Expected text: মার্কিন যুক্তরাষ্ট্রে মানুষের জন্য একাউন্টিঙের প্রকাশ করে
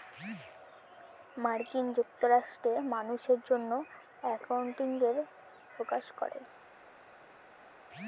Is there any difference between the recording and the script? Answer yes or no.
no